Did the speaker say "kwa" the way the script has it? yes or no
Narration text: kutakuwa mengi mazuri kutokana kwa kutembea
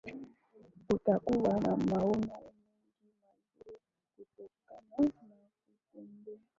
no